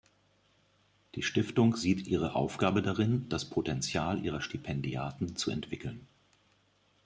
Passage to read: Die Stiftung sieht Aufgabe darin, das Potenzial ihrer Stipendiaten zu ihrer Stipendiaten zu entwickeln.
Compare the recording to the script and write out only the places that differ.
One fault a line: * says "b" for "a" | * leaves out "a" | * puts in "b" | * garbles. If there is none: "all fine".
* puts in "ihre"
* leaves out "ihrer Stipendiaten zu"